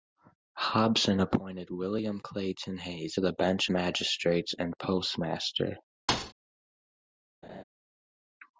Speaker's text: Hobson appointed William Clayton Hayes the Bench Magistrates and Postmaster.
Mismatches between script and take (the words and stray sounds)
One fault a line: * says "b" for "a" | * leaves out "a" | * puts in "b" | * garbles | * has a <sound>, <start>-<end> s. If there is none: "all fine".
* has a thud, 6.1-6.3 s
* has a laugh, 7.4-7.6 s